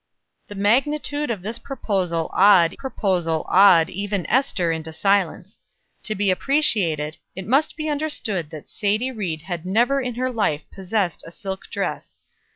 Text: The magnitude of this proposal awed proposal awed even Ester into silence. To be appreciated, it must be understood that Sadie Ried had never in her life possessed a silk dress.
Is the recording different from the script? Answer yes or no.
no